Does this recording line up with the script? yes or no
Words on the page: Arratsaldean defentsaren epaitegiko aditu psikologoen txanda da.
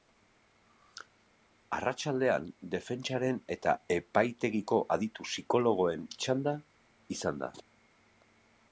no